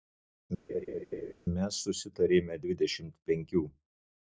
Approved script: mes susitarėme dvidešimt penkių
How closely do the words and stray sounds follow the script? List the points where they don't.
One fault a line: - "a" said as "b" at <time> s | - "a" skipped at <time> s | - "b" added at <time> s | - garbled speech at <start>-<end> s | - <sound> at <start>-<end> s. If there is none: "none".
- laugh at 0.7-1.3 s